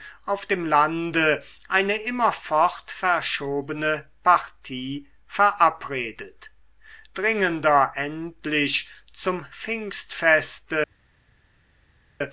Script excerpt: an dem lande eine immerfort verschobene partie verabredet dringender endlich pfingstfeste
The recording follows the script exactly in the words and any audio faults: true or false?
false